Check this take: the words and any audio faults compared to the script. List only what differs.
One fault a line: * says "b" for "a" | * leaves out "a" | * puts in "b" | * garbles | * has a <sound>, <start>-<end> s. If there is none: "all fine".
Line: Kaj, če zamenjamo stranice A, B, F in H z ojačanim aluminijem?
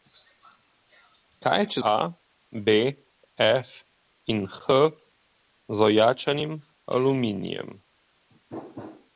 * leaves out "zamenjamo stranice"